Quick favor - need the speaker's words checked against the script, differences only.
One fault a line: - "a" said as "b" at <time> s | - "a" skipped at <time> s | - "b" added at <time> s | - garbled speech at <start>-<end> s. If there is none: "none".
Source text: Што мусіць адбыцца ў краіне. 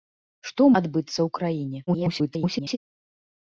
- "мусіць" skipped at 0.6 s
- garbled speech at 1.9-2.8 s